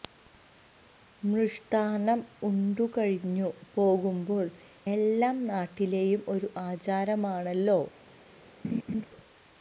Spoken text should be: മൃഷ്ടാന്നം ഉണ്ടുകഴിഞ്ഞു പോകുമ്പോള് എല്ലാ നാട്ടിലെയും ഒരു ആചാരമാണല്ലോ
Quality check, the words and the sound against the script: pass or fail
fail